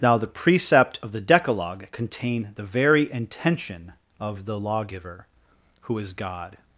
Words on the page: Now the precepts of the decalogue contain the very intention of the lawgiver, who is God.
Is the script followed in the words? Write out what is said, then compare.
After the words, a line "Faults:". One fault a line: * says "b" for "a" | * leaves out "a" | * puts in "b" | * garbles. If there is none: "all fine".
Now the precept of the decalogue contain the very intention of the lawgiver, who is God.
Faults:
* says "precept" for "precepts"